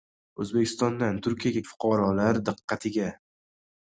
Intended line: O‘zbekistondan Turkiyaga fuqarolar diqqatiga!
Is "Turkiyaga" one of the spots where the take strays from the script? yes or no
no